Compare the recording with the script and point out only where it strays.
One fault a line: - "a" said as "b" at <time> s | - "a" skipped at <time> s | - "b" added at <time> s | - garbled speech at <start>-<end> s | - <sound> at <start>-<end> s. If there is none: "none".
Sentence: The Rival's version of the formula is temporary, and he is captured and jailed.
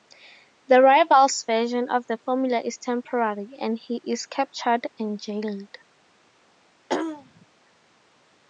- throat clearing at 6.9-7.5 s